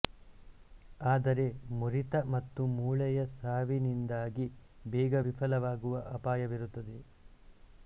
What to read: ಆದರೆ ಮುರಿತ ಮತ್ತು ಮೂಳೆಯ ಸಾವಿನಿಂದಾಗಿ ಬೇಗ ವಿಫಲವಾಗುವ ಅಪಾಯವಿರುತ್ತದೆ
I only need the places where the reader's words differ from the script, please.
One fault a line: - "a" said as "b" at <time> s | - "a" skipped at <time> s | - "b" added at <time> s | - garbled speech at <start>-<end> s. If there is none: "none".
none